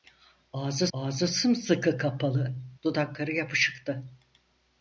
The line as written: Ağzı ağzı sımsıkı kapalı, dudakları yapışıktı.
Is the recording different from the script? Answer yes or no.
no